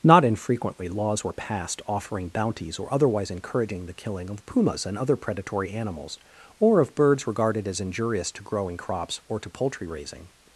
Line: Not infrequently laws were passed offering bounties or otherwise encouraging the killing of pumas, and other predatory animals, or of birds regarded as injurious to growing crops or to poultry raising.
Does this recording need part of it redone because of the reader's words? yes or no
no